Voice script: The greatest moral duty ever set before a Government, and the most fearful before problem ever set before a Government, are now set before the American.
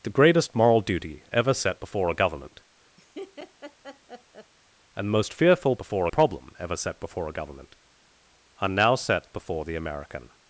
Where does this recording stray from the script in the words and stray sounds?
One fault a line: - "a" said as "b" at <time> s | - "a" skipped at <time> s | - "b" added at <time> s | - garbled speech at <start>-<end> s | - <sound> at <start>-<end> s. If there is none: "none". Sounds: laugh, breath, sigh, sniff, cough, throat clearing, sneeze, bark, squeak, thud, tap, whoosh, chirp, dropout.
- laugh at 3.0-4.5 s